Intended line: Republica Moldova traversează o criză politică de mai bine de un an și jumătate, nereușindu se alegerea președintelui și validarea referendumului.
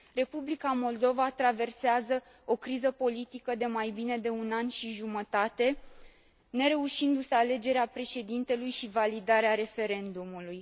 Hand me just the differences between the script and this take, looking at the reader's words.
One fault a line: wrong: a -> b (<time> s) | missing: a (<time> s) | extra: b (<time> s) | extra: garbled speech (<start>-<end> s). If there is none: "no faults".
no faults